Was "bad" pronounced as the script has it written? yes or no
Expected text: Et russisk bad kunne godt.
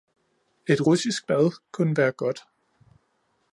yes